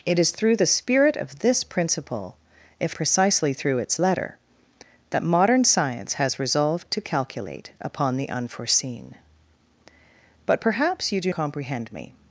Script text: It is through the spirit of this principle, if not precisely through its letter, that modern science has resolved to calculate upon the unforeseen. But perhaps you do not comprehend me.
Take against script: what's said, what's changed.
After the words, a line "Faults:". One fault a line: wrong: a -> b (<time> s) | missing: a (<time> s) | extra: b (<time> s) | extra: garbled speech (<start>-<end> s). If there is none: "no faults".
It is through the spirit of this principle, if precisely through its letter, that modern science has resolved to calculate upon the unforeseen. But perhaps you do comprehend me.
Faults:
missing: not (3.0 s)
missing: not (11.3 s)